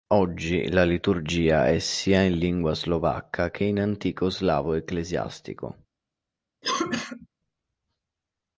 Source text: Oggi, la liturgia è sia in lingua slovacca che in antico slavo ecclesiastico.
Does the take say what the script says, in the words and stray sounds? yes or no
no